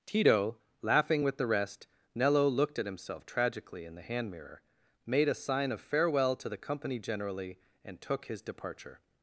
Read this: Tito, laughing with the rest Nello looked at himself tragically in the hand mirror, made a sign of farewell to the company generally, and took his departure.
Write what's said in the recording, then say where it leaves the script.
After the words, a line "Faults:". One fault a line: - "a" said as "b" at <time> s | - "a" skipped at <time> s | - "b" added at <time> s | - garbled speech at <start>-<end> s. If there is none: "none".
Tito, laughing with the rest Nello looked at himself tragically in the hand mirror, made a sign of farewell to the company generally, and took his departure.
Faults:
none